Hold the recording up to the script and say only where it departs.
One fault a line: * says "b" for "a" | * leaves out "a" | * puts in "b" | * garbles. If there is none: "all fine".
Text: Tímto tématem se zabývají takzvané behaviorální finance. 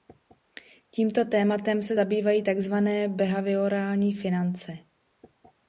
all fine